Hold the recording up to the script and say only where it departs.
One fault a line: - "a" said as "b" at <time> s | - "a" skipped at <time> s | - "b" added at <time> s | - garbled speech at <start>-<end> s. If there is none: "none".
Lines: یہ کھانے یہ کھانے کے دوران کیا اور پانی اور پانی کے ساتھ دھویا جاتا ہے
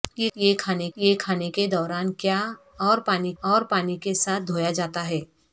none